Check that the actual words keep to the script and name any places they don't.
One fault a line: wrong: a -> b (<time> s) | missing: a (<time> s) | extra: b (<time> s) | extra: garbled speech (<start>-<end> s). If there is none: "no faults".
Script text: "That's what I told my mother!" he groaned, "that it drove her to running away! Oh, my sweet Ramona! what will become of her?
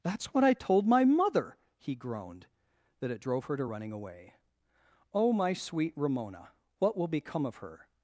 no faults